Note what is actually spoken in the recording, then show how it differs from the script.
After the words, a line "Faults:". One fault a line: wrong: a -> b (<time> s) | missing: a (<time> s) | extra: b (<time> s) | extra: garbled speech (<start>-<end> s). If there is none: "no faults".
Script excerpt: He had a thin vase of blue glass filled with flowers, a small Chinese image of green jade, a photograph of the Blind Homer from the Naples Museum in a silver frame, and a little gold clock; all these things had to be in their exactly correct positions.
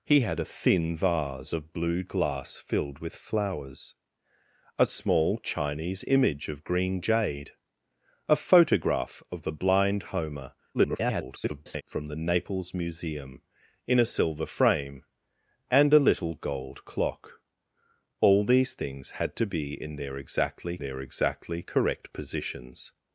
He had a thin vase of blue glass filled with flowers, a small Chinese image of green jade, a photograph of the Blind Homer [garbled] from the Naples Museum in a silver frame, and a little gold clock; all these things had to be in their exactly their exactly correct positions.
Faults:
extra: garbled speech (10.7-11.8 s)
extra: their exactly (20.8 s)